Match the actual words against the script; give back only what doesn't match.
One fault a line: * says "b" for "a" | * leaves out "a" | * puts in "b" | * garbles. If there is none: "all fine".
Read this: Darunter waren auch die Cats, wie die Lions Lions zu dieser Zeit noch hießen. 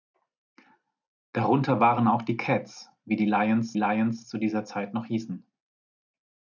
all fine